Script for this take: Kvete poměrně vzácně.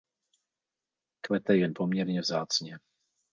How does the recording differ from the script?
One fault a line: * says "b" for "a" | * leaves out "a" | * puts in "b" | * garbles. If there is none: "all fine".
* puts in "jen"